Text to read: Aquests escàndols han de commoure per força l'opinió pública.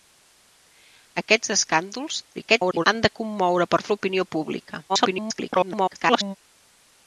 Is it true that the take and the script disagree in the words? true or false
true